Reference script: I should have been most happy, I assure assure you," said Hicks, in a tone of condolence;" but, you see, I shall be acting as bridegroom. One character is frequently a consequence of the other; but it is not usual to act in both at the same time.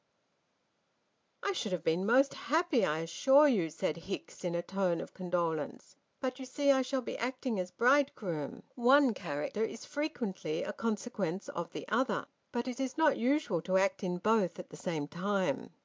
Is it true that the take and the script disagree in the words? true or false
true